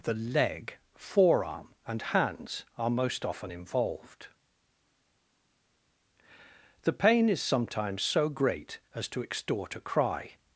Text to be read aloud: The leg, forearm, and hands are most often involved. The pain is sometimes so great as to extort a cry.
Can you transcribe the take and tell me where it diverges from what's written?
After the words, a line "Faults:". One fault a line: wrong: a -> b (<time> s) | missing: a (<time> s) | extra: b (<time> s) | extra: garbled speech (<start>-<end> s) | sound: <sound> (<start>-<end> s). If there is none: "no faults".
The leg, forearm, and hands are most often involved. The pain is sometimes so great as to extort a cry.
Faults:
no faults